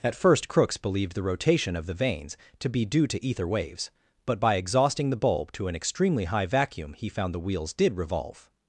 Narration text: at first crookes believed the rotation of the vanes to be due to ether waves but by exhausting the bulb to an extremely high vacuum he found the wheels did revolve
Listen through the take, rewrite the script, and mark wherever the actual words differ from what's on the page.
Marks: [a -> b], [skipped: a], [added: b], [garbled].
at first crookes believed the rotation of the vanes to be due to ether waves but by exhausting the bulb to an extremely high vacuum he found the wheels did revolve